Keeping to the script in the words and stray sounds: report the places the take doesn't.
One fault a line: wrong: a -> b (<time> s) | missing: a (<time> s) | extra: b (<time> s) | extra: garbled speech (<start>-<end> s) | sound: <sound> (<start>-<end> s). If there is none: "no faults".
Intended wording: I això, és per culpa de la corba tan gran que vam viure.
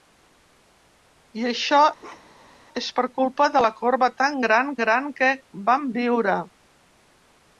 sound: bark (2.0-2.6 s)
extra: gran (4.9 s)